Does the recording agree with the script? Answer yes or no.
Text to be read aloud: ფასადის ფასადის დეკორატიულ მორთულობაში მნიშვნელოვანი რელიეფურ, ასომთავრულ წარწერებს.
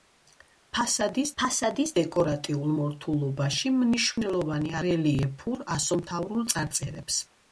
yes